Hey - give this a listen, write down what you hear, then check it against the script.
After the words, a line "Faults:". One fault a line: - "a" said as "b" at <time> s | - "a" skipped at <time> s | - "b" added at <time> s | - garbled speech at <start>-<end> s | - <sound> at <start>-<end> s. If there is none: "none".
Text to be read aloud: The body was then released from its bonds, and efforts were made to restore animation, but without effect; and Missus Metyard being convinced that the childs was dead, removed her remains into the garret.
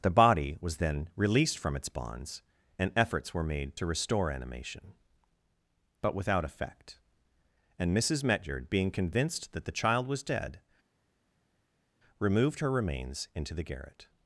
The body was then released from its bonds, and efforts were made to restore animation, but without effect; and Missus Metyard being convinced that the child was dead, removed her remains into the garret.
Faults:
- "childs" said as "child" at 9.8 s